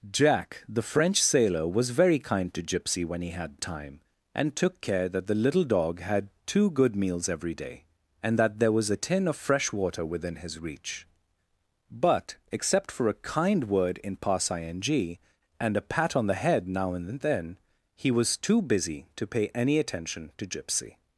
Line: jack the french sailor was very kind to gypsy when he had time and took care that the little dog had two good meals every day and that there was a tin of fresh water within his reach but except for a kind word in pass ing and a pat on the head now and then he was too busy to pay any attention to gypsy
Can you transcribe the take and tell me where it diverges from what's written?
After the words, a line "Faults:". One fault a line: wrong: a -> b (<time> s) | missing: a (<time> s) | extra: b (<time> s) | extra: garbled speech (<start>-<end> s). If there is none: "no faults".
jack the french sailor was very kind to gypsy when he had time and took care that the little dog had two good meals every day and that there was a tin of fresh water within his reach but except for a kind word in pass ing and a pat on the head now and then he was too busy to pay any attention to gypsy
Faults:
no faults